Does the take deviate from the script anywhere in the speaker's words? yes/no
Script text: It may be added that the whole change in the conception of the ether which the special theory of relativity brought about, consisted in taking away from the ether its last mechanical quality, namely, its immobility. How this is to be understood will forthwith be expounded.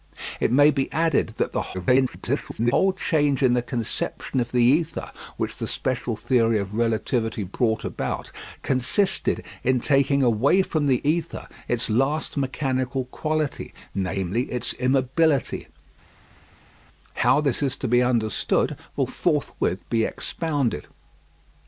yes